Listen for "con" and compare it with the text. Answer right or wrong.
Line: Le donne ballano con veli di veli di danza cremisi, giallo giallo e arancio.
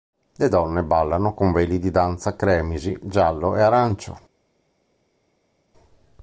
right